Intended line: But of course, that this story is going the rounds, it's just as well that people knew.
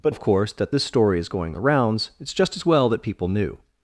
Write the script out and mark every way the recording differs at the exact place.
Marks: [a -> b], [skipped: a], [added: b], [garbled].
But of course, that this story is going the rounds, it's just as well that people knew.